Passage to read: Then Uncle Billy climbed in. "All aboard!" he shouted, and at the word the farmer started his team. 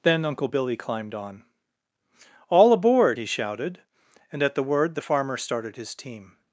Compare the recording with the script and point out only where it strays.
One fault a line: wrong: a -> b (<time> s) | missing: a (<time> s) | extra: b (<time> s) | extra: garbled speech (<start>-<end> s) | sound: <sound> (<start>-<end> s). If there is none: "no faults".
wrong: in -> on (1.1 s)